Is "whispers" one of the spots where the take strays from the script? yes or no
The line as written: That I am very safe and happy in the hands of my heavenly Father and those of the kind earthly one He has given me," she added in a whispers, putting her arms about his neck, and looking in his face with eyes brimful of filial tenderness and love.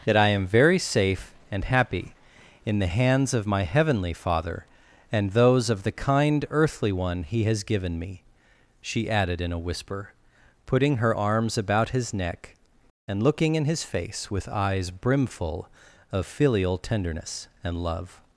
yes